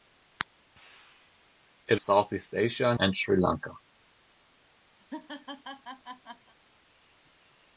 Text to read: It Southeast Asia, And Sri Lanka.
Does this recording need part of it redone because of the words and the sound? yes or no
yes